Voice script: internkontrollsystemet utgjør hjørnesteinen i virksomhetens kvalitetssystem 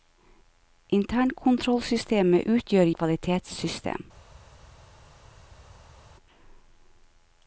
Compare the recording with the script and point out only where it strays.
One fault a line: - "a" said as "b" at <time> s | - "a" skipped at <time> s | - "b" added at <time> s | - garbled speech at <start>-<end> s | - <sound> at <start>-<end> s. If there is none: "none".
- "hjørnesteinen i virksomhetens" skipped at 2.9 s